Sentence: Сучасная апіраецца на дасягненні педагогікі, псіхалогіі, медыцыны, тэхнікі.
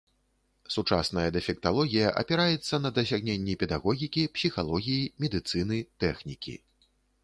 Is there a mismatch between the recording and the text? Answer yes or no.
yes